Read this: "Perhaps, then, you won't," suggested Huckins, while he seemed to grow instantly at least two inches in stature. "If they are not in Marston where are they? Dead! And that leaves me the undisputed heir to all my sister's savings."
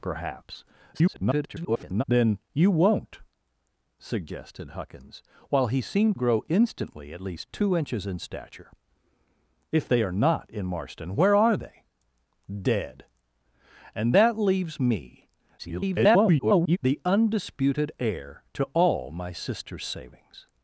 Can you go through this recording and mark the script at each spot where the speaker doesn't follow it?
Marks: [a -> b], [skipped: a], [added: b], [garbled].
"Perhaps, [garbled] then, you won't," suggested Huckins, while he seemed [skipped: to] grow instantly at least two inches in stature. "If they are not in Marston where are they? Dead! And that leaves me [garbled] the undisputed heir to all my sister's savings."